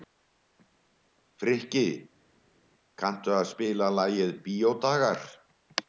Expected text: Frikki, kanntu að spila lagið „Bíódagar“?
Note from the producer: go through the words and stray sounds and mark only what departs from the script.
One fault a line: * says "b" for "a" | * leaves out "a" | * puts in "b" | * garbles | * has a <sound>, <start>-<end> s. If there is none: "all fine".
all fine